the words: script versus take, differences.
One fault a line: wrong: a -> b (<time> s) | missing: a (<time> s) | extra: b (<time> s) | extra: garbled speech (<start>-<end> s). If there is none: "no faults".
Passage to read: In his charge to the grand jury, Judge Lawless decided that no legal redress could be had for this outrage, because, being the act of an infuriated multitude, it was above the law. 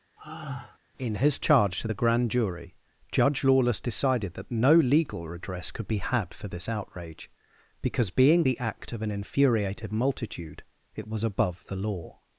no faults